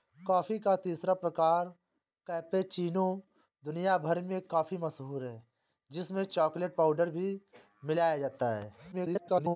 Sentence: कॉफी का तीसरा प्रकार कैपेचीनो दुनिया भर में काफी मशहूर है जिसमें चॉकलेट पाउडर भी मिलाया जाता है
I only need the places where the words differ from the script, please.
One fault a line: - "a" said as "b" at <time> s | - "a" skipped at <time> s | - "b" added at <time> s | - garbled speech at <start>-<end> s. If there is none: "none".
- garbled speech at 8.9-9.6 s